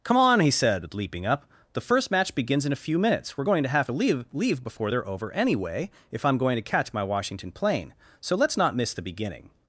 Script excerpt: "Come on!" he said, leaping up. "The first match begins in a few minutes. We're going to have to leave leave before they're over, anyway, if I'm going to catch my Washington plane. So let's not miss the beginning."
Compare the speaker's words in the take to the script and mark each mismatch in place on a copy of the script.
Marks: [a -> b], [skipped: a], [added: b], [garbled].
"Come on!" he said, leaping up. "The first match begins in a few minutes. We're going to have to leave leave before they're over, anyway, if I'm going to catch my Washington plane. So let's not miss the beginning."